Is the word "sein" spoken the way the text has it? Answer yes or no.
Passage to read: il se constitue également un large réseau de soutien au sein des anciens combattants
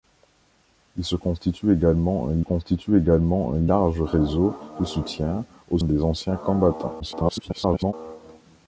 no